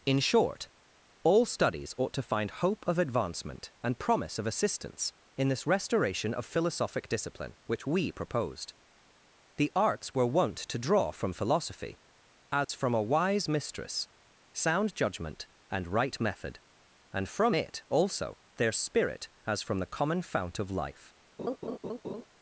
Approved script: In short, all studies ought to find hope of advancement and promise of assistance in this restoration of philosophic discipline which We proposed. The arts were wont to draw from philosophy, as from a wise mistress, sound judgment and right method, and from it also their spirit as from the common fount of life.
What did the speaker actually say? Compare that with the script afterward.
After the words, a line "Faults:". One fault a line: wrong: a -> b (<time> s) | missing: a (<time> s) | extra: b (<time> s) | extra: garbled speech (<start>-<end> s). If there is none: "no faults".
In short, all studies ought to find hope of advancement and promise of assistance in this restoration of philosophic discipline which We proposed. The arts were wont to draw from philosophy, as from a wise mistress, sound judgment and right method, and from it also their spirit as from the common fount of life.
Faults:
no faults